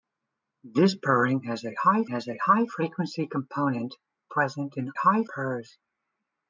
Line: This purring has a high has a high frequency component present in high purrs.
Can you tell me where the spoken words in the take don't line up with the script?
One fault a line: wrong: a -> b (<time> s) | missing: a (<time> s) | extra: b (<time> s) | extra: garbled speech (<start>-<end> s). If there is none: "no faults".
no faults